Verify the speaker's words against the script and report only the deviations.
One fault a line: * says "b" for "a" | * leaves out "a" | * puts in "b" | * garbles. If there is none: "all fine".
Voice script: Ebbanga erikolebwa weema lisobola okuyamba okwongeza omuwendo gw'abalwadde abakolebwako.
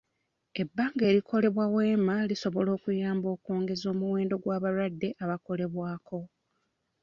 all fine